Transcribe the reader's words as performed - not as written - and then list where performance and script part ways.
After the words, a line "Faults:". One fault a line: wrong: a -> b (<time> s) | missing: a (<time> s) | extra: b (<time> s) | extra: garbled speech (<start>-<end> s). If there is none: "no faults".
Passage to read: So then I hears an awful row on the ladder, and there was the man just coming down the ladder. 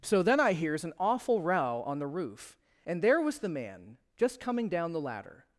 So then I hears an awful row on the roof, and there was the man just coming down the ladder.
Faults:
wrong: ladder -> roof (2.1 s)